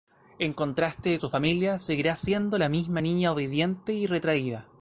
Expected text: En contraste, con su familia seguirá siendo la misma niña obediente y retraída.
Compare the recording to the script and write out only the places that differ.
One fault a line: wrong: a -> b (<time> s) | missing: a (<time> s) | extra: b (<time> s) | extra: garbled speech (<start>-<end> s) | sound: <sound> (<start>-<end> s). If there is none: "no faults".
missing: con (1.2 s)